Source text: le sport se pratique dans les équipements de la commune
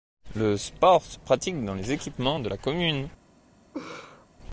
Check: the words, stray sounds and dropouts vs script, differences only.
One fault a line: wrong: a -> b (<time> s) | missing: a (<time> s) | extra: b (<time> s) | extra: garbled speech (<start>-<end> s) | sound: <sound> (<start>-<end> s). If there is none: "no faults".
sound: laugh (3.7-4.3 s)